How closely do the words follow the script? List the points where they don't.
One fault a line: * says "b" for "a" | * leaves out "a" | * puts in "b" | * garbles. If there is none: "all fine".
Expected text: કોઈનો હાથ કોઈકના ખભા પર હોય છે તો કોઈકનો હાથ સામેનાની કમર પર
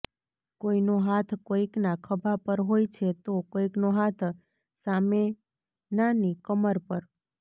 all fine